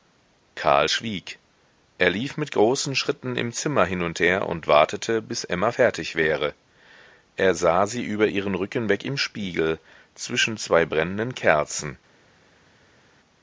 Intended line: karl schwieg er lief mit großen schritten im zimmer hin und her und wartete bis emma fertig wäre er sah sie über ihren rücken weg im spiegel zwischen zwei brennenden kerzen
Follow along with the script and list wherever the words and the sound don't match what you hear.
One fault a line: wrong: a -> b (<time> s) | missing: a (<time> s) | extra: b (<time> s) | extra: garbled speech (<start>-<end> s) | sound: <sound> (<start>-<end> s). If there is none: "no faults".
no faults